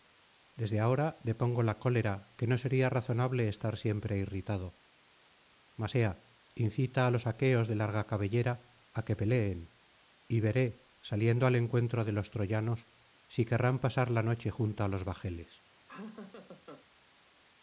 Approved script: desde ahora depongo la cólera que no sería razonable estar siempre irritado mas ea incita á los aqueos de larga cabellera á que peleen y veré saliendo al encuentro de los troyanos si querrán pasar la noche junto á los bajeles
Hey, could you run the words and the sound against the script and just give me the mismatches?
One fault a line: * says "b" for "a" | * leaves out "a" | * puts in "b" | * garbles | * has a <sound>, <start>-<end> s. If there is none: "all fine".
* has a laugh, 15.9-16.9 s